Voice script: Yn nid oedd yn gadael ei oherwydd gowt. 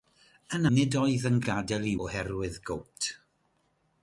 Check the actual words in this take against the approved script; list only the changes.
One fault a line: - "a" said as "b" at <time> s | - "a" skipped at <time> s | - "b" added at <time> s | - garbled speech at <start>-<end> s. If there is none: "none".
none